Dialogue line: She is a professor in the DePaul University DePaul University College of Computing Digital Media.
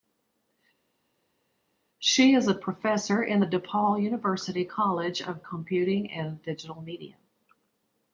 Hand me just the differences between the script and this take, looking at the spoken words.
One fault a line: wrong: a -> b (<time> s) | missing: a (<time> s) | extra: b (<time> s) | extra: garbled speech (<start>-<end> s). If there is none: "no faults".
missing: DePaul University (4.7 s)
extra: and (6.1 s)